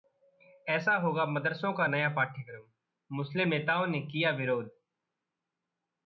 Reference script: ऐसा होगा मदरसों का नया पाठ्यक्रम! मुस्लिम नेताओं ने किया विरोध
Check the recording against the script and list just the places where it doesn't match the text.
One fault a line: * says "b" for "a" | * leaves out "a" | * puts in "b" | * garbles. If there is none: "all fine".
all fine